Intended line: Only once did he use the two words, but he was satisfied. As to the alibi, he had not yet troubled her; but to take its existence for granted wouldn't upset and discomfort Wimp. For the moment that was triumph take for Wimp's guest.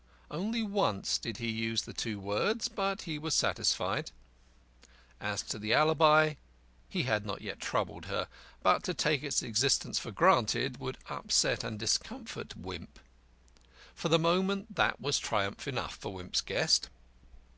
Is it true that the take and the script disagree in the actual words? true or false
true